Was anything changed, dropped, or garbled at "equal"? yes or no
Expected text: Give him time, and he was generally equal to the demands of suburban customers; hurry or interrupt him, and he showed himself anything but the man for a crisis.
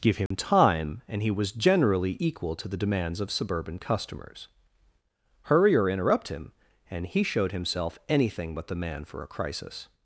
no